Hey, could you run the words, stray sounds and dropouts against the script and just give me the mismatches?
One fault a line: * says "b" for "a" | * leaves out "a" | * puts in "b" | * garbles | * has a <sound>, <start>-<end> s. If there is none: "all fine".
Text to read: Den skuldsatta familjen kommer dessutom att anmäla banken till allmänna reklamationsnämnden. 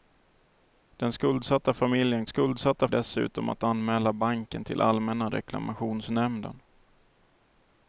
* says "skuldsatta" for "kommer"